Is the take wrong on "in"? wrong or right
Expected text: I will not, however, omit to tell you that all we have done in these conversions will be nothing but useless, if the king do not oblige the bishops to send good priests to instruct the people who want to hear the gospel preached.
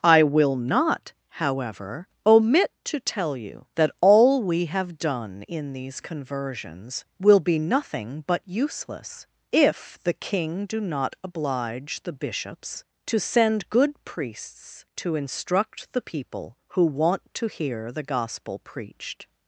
right